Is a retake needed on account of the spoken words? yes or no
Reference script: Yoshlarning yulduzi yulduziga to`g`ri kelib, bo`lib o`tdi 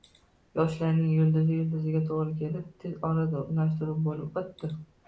yes